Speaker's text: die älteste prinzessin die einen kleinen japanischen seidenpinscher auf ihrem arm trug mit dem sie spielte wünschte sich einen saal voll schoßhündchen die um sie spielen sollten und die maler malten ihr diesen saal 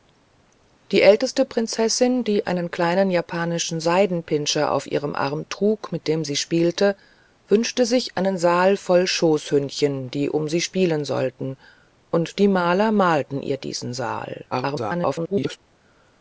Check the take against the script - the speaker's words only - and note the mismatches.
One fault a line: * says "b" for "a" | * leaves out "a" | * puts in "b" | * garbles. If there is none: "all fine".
* garbles